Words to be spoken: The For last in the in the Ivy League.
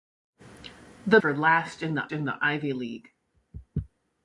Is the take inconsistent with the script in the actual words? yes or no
no